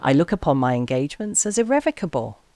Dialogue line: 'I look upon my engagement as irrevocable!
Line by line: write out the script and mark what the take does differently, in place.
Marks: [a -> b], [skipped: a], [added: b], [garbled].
'I look upon my [engagement -> engagements] as irrevocable!